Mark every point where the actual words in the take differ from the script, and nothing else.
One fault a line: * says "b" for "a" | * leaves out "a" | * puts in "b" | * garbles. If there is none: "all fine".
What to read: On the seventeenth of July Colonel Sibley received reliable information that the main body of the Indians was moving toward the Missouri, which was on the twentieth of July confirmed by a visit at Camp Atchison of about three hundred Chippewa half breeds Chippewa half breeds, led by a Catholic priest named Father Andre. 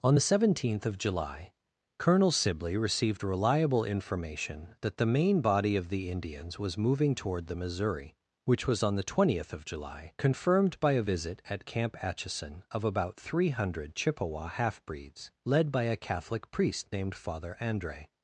* leaves out "Chippewa half breeds"